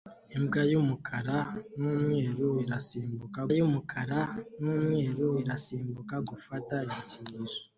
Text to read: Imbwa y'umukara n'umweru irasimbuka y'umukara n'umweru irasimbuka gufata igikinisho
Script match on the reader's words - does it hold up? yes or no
yes